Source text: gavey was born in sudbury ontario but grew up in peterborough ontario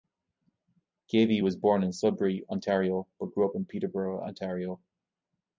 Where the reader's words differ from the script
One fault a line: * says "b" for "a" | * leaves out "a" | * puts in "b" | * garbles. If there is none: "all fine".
all fine